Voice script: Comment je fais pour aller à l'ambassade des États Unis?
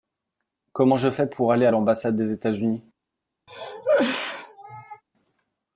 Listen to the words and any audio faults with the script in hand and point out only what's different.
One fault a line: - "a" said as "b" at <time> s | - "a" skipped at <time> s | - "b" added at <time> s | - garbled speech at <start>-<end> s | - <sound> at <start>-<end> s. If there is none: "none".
- cough at 3.5-5.0 s